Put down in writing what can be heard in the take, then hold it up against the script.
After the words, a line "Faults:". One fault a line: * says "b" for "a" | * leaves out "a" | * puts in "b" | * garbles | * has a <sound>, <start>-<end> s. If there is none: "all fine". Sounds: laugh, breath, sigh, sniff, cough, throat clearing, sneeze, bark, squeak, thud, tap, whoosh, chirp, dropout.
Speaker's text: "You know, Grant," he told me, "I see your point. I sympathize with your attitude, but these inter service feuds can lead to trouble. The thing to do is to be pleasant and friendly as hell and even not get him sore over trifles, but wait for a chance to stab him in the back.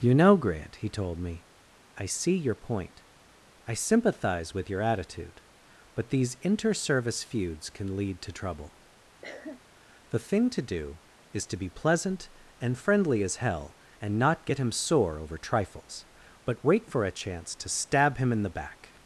"You know, Grant," he told me, "I see your point. I sympathize with your attitude, but these inter service feuds can lead to trouble. The thing to do is to be pleasant and friendly as hell and not get him sore over trifles, but wait for a chance to stab him in the back.
Faults:
* has a cough, 9.2-9.6 s
* leaves out "even"